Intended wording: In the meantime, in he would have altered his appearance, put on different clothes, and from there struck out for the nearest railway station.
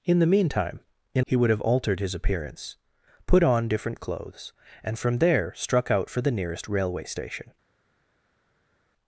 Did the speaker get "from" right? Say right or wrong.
right